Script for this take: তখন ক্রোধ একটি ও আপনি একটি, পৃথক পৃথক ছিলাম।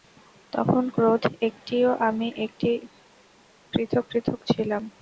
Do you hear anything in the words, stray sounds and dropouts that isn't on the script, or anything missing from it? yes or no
yes